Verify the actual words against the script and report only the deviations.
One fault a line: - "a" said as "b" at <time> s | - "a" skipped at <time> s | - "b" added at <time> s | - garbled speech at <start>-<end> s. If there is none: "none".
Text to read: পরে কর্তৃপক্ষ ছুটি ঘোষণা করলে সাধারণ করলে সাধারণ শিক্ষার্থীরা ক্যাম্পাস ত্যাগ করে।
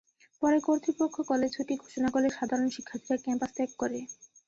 - "কলেজ" added at 1.3 s
- "করলে সাধারণ" skipped at 2.7 s